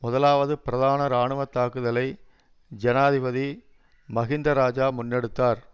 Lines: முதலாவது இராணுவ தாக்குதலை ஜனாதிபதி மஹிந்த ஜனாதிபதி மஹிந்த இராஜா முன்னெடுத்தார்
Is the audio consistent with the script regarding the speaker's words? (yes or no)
no